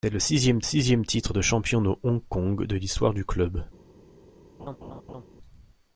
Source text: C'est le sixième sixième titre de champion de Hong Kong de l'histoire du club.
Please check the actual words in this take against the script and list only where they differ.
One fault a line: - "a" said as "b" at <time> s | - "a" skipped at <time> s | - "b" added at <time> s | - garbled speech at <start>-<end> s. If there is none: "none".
none